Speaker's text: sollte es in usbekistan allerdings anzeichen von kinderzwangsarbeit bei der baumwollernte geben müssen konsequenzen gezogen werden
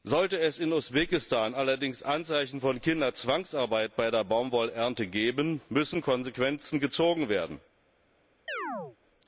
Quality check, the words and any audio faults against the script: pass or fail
fail